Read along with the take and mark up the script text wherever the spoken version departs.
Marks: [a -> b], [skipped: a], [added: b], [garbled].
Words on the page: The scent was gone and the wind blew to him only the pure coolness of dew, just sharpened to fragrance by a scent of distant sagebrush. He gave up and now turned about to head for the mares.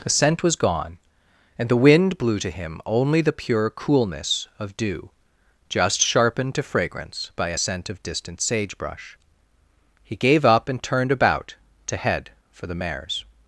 The scent was gone and the wind blew to him only the pure coolness of dew, just sharpened to fragrance by a scent of distant sagebrush. He gave up and [skipped: now] turned about to head for the mares.